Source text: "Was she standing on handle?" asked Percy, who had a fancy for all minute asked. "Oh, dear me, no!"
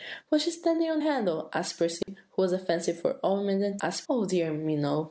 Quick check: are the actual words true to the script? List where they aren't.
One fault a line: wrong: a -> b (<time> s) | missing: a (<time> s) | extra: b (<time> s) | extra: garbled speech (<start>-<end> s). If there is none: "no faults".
no faults